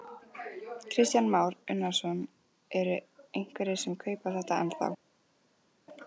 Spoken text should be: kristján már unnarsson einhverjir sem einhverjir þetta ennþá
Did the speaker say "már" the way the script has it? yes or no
yes